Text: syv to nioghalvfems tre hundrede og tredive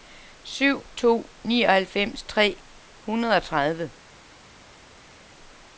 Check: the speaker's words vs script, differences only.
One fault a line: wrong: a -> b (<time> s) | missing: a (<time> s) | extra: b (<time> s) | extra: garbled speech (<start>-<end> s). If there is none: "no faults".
no faults